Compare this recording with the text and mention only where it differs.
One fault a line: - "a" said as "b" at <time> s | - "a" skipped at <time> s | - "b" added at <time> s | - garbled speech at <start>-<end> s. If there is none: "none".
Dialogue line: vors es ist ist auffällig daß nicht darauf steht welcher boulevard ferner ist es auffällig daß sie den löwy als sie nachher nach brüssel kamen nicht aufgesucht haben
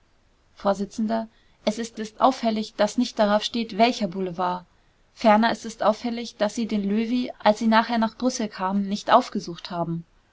none